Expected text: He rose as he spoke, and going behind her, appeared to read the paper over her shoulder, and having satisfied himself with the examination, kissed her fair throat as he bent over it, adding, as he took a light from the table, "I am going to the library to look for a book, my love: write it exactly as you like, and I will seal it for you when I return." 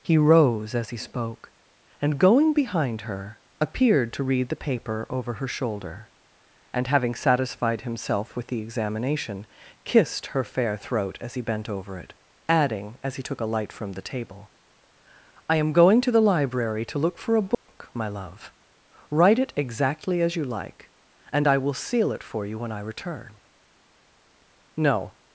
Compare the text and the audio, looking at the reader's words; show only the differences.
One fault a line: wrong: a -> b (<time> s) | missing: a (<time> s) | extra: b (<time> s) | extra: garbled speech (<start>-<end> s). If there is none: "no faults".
extra: No (24.8 s)